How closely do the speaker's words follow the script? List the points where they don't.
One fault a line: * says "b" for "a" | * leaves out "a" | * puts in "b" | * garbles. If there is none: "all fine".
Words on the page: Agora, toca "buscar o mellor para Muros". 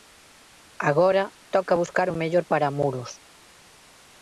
all fine